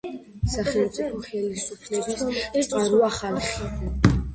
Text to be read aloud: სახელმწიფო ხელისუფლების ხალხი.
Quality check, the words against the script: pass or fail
fail